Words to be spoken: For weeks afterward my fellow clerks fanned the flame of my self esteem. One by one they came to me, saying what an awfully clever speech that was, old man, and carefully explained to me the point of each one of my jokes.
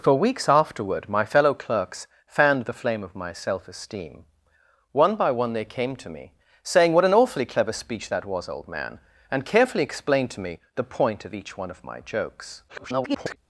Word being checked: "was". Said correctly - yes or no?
yes